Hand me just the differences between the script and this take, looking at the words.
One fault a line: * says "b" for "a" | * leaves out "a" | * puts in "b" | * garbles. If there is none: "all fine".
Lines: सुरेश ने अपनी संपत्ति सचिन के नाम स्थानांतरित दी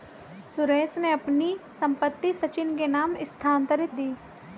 all fine